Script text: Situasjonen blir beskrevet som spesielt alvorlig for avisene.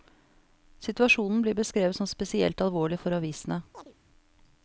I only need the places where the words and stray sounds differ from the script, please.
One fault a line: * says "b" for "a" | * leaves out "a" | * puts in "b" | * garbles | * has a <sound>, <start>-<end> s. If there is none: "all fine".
* has a chirp, 3.7-3.9 s